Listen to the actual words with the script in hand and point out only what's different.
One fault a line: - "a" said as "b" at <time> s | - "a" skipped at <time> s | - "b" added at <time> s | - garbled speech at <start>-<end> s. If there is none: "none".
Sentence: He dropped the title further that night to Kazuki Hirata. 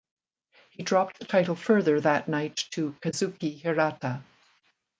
none